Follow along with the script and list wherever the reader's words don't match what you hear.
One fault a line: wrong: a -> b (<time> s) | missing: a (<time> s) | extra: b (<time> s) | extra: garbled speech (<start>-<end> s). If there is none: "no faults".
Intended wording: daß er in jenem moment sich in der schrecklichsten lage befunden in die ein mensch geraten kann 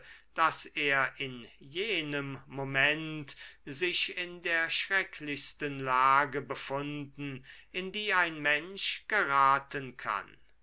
no faults